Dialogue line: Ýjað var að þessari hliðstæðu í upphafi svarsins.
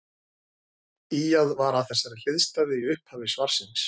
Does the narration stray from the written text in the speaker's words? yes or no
no